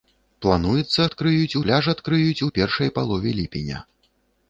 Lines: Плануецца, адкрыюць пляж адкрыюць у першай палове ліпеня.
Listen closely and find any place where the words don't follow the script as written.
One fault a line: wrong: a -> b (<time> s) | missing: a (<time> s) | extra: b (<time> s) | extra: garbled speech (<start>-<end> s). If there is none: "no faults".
no faults